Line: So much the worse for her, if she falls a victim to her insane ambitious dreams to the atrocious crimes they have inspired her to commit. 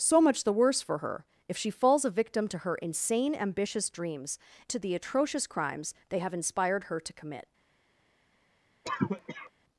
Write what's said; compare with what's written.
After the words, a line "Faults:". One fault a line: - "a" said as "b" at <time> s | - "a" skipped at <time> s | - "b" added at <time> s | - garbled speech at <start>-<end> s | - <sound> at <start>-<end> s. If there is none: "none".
So much the worse for her, if she falls a victim to her insane ambitious dreams to the atrocious crimes they have inspired her to commit.
Faults:
- cough at 8.8-9.5 s